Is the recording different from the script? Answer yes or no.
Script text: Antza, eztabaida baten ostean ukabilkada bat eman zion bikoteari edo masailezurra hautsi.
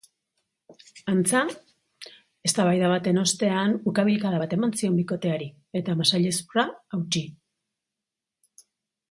yes